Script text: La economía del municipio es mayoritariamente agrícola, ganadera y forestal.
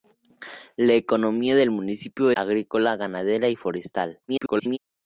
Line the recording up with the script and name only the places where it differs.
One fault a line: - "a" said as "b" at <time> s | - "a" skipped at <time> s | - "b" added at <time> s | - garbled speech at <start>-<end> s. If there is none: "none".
- "es mayoritariamente" skipped at 2.3 s
- garbled speech at 4.3-4.8 s